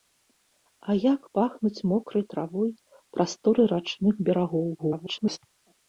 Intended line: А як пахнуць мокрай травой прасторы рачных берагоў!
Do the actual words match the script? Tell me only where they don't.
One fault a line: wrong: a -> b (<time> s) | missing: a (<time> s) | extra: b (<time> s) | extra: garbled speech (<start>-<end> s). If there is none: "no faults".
extra: garbled speech (4.8-5.4 s)